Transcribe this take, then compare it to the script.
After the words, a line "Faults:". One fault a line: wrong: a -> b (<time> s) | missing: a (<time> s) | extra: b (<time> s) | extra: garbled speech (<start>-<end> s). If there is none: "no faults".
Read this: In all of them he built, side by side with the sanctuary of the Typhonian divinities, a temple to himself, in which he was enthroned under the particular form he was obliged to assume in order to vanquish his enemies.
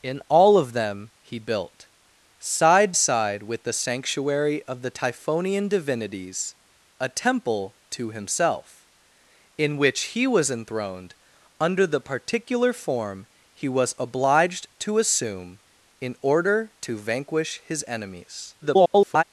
In all of them he built, side side with the sanctuary of the Typhonian divinities, a temple to himself, in which he was enthroned under the particular form he was obliged to assume in order to vanquish his enemies. [garbled]
Faults:
missing: by (2.9 s)
extra: garbled speech (18.6-19.2 s)